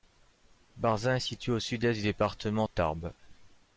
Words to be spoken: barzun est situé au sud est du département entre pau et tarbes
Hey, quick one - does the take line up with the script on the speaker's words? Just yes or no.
no